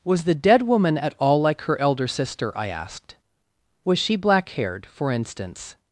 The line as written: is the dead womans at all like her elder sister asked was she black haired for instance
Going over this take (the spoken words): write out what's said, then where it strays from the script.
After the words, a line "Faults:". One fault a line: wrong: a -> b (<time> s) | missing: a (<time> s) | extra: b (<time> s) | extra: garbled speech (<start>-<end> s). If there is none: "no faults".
was the dead woman at all like her elder sister i asked was she black haired for instance
Faults:
wrong: is -> was (0.0 s)
wrong: womans -> woman (0.6 s)
extra: i (2.6 s)